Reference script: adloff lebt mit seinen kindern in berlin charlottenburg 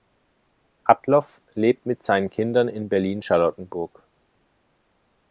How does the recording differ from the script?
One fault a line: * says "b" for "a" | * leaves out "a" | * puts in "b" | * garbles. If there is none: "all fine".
all fine